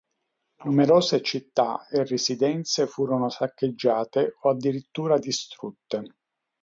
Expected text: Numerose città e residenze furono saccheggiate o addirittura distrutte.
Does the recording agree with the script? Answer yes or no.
yes